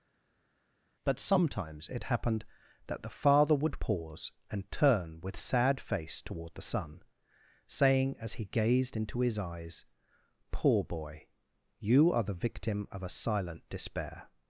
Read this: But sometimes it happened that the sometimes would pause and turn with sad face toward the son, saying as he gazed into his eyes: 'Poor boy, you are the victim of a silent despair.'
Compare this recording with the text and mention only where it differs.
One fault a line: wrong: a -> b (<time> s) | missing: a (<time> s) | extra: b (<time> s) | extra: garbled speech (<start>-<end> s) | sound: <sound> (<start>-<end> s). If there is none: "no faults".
wrong: sometimes -> father (3.1 s)